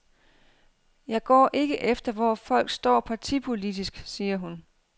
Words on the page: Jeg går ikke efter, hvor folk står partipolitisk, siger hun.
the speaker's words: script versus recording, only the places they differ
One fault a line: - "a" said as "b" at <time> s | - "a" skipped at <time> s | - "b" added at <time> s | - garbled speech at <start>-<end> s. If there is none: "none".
none